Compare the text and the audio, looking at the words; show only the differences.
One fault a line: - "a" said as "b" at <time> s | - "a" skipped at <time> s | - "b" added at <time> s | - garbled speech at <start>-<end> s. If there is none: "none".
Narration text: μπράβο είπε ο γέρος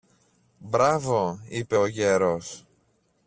none